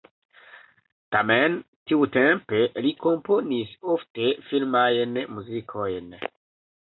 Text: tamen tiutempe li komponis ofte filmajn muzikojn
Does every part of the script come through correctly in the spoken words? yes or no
yes